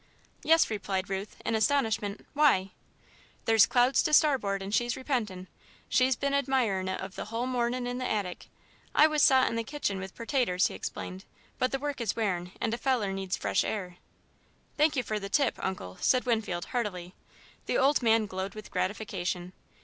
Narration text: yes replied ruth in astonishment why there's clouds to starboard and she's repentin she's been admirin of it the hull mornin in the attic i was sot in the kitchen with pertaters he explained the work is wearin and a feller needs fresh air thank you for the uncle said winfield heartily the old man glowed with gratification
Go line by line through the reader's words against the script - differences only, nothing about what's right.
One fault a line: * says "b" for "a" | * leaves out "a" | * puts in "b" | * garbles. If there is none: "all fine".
* puts in "but"
* puts in "tip"